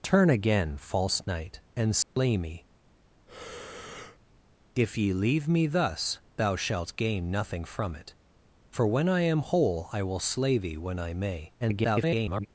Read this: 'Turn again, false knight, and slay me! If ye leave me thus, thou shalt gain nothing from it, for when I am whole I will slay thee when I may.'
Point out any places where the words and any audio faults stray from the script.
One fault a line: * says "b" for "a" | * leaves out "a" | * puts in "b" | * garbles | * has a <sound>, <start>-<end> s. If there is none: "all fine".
* has a dropout, 2.0-2.2 s
* has a breath, 3.3-4.2 s
* garbles